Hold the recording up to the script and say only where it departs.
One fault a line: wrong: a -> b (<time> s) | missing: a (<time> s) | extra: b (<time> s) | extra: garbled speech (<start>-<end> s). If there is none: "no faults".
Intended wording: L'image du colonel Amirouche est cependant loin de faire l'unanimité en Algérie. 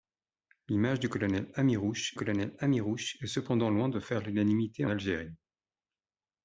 extra: colonel Amirouche (2.2 s)
missing: en (4.9 s)